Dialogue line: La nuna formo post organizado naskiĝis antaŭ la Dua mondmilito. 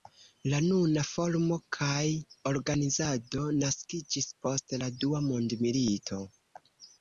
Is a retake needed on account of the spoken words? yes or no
yes